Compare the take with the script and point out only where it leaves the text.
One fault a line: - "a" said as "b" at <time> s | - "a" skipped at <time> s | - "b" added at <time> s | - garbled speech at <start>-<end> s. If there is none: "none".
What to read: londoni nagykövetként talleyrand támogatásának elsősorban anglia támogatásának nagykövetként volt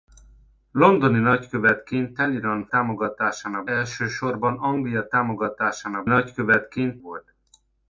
none